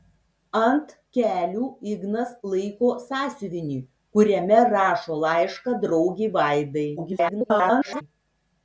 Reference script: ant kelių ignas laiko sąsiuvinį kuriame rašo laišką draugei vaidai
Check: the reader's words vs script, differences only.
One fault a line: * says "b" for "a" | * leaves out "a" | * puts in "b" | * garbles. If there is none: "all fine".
* garbles